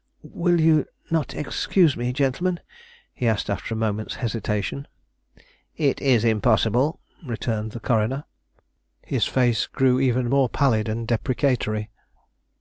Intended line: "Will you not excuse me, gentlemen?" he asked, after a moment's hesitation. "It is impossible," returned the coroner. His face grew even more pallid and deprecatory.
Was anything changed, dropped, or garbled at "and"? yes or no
no